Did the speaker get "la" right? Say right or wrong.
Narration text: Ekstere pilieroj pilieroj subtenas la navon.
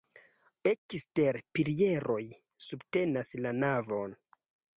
right